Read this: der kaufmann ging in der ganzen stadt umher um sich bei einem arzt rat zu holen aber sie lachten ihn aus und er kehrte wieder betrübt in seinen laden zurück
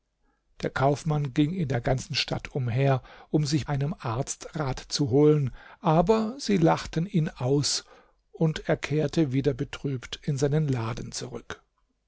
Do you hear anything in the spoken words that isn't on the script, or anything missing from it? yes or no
yes